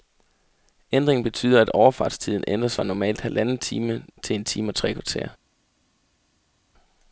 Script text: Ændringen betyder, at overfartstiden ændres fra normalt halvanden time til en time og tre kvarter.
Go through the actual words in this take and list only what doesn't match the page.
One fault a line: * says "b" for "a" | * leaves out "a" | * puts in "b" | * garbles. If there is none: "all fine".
all fine